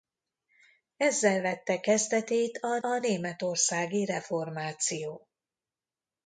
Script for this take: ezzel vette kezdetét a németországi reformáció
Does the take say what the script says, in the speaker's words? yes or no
no